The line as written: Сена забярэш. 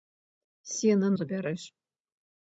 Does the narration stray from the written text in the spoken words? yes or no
no